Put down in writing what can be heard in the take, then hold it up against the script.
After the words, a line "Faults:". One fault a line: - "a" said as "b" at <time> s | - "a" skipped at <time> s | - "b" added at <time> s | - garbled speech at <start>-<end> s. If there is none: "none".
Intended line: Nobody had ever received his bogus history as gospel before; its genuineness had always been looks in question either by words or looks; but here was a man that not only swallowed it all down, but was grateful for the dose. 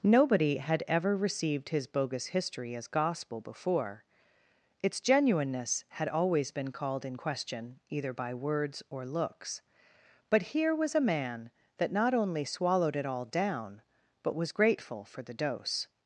Nobody had ever received his bogus history as gospel before; its genuineness had always been called in question either by words or looks; but here was a man that not only swallowed it all down, but was grateful for the dose.
Faults:
- "looks" said as "called" at 6.7 s